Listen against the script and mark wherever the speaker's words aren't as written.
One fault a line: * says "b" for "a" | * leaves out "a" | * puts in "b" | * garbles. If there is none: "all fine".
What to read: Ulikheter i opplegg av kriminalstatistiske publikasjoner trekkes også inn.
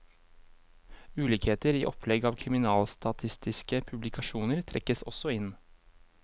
all fine